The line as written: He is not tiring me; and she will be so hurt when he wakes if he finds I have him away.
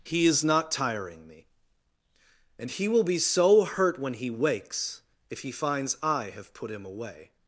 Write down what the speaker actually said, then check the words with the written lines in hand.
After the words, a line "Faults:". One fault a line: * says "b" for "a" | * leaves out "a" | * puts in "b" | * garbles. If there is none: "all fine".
He is not tiring me; and he will be so hurt when he wakes if he finds I have put him away.
Faults:
* says "he" for "she"
* puts in "put"